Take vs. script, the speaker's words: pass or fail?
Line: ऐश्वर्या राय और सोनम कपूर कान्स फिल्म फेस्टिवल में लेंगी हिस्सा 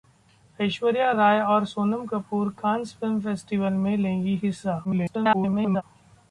fail